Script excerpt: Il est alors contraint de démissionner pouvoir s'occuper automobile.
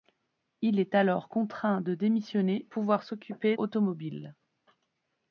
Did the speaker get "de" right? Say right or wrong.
right